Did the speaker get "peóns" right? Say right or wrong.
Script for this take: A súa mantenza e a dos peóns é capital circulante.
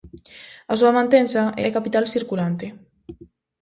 wrong